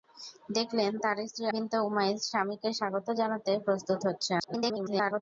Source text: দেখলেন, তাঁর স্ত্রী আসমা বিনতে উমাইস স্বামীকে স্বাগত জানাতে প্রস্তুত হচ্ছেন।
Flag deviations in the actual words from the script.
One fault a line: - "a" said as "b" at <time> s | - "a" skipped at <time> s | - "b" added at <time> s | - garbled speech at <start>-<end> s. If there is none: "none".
- "আসমা" skipped at 1.5 s
- garbled speech at 4.4-5.2 s